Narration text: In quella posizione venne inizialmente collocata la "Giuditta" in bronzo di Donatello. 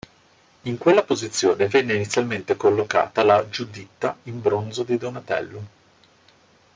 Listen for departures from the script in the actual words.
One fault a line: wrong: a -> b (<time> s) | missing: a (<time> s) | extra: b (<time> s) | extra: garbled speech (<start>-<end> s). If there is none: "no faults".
no faults